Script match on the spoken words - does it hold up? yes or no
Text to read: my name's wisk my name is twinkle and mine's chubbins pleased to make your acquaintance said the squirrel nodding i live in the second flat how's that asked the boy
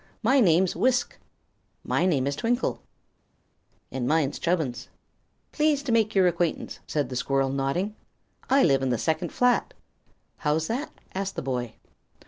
yes